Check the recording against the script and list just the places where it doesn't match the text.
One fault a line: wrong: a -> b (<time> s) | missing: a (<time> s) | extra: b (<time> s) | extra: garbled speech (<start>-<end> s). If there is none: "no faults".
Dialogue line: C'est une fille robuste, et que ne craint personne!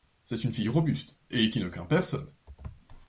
wrong: que -> qui (1.5 s)